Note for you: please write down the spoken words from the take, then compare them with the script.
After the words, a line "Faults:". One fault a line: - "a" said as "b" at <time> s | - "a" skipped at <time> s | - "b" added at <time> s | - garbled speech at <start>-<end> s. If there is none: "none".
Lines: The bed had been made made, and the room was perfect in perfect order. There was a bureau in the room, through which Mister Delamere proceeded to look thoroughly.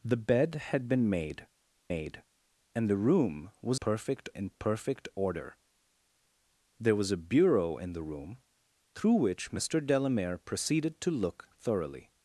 The bed had been made made, and the room was perfect in perfect order. There was a bureau in the room, through which Mister Delamere proceeded to look thoroughly.
Faults:
none